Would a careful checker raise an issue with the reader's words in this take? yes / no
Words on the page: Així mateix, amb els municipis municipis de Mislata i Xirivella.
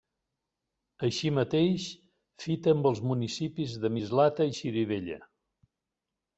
yes